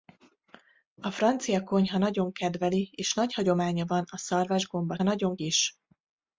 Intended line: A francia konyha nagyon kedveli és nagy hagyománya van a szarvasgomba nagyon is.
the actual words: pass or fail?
pass